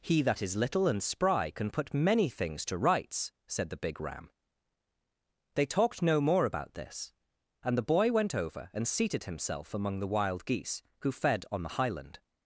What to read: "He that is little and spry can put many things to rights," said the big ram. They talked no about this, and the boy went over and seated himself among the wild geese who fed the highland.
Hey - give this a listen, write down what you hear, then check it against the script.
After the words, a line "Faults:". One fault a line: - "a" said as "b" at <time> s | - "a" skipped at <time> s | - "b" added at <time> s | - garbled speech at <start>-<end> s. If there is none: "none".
"He that is little and spry can put many things to rights," said the big ram. They talked no more about this, and the boy went over and seated himself among the wild geese who fed on the highland.
Faults:
- "more" added at 6.2 s
- "on" added at 11.5 s